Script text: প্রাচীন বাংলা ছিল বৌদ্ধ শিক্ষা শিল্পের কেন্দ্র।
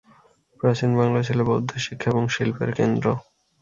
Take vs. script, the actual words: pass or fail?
fail